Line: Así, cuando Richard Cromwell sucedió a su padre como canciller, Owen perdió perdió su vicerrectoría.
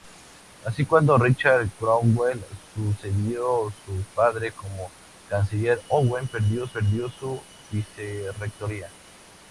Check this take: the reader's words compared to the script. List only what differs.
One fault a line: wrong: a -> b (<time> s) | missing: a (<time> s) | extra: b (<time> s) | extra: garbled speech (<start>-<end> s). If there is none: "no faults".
no faults